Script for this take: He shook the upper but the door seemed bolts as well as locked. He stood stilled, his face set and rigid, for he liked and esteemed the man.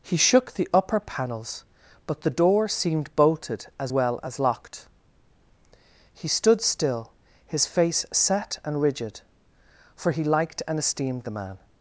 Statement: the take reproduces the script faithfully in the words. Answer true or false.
false